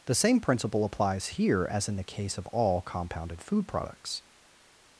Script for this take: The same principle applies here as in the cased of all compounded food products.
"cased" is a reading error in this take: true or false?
true